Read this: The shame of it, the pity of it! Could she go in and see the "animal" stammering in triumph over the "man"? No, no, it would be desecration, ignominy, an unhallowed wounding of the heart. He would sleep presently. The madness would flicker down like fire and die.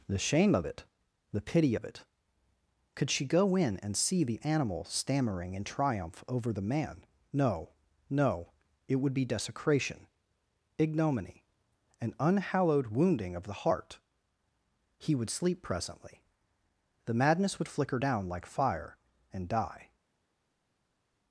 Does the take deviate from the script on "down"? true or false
false